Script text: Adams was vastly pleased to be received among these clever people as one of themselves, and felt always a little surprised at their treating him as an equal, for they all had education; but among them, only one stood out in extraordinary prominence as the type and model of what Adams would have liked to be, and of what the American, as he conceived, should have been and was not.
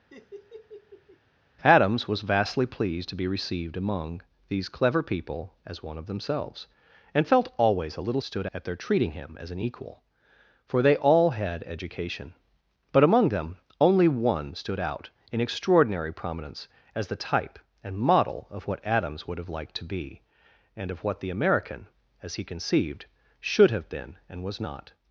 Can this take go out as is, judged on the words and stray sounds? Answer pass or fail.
fail